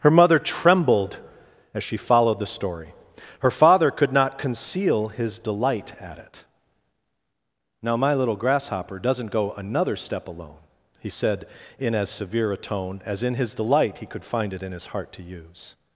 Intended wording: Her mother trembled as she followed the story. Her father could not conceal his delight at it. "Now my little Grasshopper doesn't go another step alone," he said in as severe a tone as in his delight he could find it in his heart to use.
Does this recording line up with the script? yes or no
yes